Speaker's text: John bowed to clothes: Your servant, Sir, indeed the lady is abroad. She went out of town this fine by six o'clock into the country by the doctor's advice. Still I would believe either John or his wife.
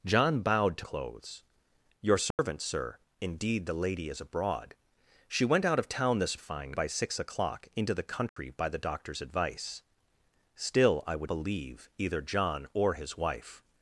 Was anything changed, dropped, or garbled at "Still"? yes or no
no